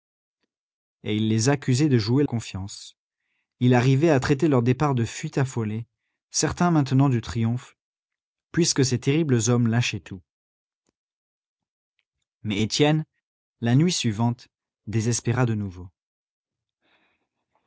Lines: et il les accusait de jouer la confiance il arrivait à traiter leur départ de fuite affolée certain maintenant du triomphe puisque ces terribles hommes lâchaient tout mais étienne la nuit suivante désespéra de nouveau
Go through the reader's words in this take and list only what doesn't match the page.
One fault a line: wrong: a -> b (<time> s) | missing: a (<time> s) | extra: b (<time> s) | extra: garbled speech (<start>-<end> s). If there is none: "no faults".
missing: la (2.2 s)